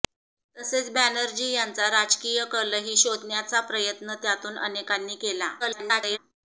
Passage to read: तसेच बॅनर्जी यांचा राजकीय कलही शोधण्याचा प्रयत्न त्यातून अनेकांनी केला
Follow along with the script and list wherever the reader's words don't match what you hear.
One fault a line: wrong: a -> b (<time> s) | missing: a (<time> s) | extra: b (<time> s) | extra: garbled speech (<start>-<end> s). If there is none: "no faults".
extra: garbled speech (5.6-6.2 s)